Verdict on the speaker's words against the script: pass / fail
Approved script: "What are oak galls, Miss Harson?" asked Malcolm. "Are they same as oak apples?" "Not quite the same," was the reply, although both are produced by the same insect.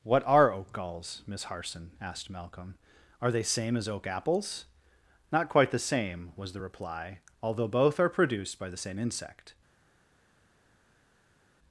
pass